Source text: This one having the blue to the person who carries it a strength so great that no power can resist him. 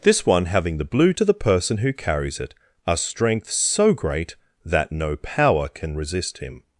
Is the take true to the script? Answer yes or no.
yes